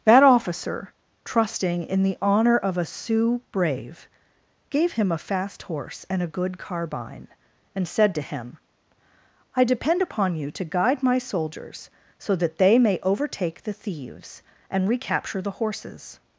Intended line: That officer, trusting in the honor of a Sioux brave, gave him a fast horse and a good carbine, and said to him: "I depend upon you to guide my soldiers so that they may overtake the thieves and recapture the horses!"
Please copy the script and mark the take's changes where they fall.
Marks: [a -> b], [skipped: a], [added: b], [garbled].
That officer, trusting in the honor of a Sioux brave, gave him a fast horse and a good carbine, and said to him: "I depend upon you to guide my soldiers so that they may overtake the thieves and recapture the horses!"